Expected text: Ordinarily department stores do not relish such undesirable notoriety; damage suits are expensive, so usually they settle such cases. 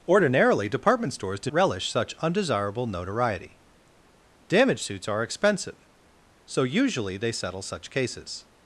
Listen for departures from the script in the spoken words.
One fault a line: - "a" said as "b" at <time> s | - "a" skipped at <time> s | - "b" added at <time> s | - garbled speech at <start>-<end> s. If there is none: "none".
- "not" skipped at 1.5 s